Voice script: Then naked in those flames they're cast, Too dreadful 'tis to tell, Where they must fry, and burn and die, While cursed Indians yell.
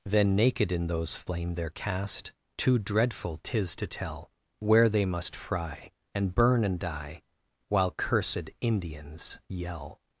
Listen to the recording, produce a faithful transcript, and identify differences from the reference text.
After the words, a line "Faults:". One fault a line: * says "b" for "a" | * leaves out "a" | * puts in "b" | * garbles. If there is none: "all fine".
Then naked in those flame they're cast, Too dreadful 'tis to tell, Where they must fry, and burn and die, While cursed Indians yell.
Faults:
* says "flame" for "flames"